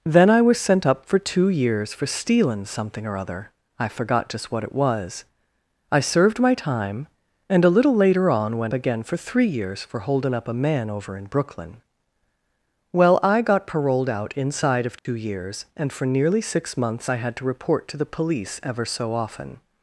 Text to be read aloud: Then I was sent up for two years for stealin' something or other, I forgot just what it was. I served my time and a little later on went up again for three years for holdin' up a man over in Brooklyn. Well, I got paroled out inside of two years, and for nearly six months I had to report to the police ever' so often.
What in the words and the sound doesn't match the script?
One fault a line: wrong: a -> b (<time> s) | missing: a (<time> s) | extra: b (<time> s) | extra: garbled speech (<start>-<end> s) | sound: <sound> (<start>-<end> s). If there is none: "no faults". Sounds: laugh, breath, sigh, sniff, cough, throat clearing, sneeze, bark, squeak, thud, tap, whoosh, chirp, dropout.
missing: up (8.7 s)
sound: dropout (15.0-15.1 s)